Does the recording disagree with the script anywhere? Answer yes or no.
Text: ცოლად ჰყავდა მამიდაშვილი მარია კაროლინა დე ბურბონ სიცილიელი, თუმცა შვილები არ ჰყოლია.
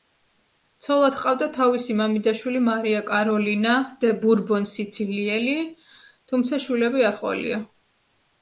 yes